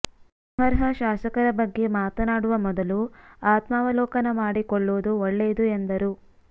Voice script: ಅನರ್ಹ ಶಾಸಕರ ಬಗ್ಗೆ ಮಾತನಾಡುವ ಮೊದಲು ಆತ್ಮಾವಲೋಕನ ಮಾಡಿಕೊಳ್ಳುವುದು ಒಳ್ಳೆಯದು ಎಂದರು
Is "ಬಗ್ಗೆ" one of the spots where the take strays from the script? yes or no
no